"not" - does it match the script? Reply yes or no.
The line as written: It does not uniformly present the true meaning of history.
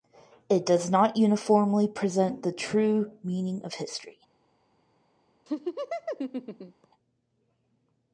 yes